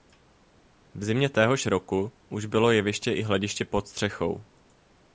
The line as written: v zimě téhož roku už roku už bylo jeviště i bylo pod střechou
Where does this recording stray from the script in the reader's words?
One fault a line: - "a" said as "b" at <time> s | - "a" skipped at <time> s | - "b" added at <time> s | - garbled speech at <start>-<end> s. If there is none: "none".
- "roku už" skipped at 2.5 s
- "bylo" said as "hlediště" at 3.2 s